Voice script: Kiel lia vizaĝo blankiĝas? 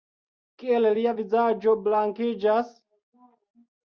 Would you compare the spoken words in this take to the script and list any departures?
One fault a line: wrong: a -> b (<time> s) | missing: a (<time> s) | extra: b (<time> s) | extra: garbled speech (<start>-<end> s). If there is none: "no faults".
no faults